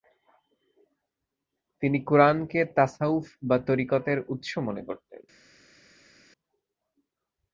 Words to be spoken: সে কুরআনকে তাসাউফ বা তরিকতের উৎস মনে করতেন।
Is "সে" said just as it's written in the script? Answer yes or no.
no